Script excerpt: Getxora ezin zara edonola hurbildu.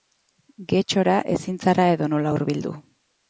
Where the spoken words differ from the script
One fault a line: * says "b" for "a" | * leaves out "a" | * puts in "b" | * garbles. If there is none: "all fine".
all fine